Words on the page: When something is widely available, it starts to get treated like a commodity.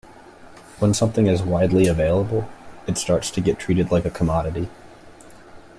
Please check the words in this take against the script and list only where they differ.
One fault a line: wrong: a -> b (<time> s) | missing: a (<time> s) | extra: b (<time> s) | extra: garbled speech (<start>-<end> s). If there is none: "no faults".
no faults